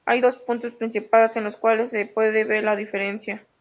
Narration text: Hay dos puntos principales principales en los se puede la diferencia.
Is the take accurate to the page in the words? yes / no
no